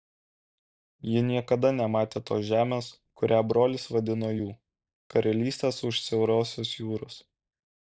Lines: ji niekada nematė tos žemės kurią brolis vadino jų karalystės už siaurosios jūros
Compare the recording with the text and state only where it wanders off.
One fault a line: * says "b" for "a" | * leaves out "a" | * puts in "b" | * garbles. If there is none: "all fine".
all fine